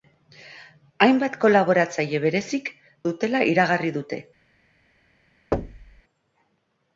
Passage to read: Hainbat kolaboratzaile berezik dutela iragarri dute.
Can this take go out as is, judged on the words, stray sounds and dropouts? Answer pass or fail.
fail